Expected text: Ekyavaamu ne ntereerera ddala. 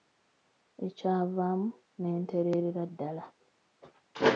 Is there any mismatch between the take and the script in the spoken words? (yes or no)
no